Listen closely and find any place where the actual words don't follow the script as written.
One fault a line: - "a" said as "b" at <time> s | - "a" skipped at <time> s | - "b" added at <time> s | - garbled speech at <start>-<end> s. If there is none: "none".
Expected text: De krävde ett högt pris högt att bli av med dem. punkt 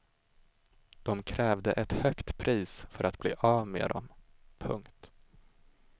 - "högt" said as "för" at 2.9 s